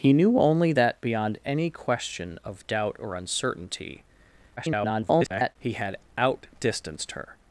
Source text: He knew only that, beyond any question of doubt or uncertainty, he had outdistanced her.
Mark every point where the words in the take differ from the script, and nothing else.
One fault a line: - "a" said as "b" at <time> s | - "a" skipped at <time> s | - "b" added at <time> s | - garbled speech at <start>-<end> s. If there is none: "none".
- garbled speech at 4.6-5.6 s